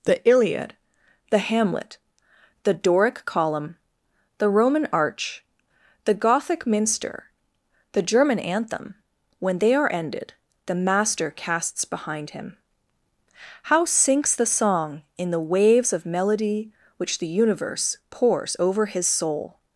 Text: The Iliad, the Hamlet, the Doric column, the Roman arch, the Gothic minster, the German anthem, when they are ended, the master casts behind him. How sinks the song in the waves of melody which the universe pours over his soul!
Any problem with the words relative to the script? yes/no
no